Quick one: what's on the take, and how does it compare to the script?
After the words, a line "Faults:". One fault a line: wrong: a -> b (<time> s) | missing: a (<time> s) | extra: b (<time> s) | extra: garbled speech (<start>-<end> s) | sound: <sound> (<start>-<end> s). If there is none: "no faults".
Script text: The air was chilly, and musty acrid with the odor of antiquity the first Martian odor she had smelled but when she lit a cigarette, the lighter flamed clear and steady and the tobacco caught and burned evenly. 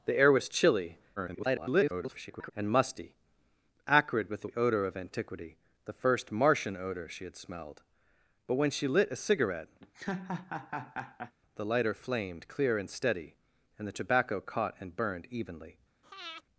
The air was chilly, [garbled] and musty acrid with the odor of antiquity the first Martian odor she had smelled but when she lit a cigarette, the lighter flamed clear and steady and the tobacco caught and burned evenly.
Faults:
extra: garbled speech (1.2-2.5 s)
sound: laugh (9.8-11.3 s)
sound: breath (16.0-16.4 s)